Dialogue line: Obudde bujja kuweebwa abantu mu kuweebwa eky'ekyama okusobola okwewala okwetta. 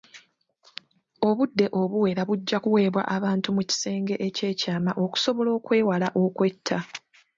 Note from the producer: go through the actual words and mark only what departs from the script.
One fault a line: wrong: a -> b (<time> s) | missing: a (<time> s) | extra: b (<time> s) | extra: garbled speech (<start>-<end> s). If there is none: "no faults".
extra: obuwera (1.8 s)
wrong: kuweebwa -> kisenge (3.7 s)